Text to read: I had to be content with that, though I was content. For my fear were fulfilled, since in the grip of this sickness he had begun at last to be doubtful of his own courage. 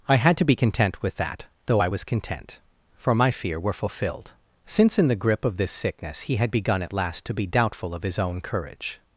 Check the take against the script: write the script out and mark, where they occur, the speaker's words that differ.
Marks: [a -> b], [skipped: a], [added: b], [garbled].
I had to be content with that, though I was content. For my fear were fulfilled, since in the grip of this sickness he had begun at last to be doubtful of his own courage.